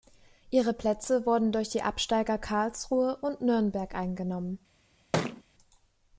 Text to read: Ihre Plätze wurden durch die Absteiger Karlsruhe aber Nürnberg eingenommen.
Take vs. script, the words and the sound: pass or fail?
fail